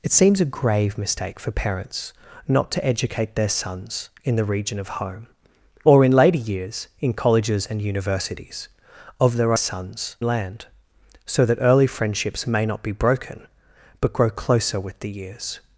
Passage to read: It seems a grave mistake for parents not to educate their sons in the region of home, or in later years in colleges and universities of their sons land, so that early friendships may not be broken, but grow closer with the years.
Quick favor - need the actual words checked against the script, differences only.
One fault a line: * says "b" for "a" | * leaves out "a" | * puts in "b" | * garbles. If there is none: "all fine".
all fine